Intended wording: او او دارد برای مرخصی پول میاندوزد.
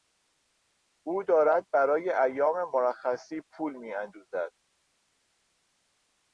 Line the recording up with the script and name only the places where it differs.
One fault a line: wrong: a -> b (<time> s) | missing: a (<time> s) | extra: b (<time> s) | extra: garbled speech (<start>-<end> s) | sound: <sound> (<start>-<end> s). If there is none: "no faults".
missing: او (1.2 s)
extra: ایام (2.1 s)